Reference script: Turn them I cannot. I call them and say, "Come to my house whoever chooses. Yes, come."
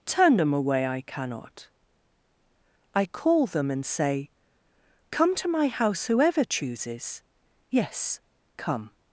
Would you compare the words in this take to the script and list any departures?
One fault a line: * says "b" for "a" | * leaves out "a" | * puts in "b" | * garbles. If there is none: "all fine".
* puts in "away"